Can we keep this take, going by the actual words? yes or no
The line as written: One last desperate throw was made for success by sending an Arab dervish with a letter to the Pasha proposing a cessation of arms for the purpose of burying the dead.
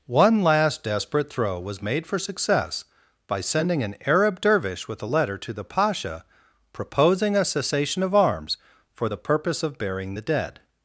yes